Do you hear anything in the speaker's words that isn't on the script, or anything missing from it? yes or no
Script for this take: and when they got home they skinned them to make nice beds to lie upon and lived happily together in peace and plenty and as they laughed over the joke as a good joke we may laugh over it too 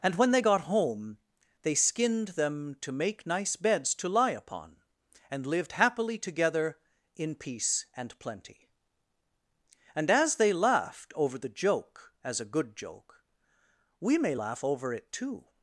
no